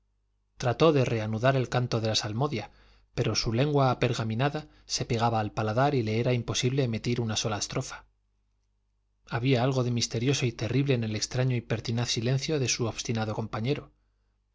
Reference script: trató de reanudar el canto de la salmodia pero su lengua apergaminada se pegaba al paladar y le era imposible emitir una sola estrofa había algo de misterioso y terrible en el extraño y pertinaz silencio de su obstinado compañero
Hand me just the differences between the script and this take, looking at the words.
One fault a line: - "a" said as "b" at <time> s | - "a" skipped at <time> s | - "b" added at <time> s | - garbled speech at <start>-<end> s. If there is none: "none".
none